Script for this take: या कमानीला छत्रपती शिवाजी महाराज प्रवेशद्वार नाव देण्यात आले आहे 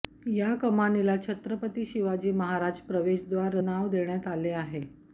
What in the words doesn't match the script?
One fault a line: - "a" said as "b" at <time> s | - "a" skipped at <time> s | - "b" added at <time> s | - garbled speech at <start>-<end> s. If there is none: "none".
none